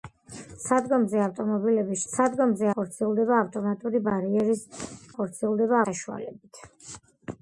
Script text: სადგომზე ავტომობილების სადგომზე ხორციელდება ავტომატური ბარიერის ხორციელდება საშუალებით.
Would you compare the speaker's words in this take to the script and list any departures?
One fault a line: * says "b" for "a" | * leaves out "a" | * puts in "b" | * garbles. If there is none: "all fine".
all fine